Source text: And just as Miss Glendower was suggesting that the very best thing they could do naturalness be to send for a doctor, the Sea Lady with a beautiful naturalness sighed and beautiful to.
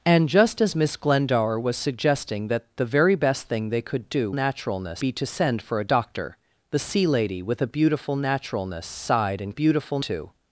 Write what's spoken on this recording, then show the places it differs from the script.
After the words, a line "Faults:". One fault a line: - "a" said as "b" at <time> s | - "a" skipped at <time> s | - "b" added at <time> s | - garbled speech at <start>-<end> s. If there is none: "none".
And just as Miss Glendower was suggesting that the very best thing they could do naturalness be to send for a doctor, the Sea Lady with a beautiful naturalness sighed and beautiful to.
Faults:
none